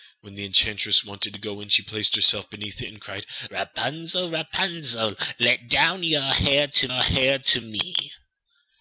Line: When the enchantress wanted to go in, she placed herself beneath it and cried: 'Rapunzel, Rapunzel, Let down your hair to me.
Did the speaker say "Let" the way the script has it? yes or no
yes